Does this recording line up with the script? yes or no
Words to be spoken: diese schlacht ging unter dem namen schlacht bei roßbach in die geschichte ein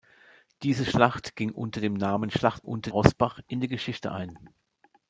no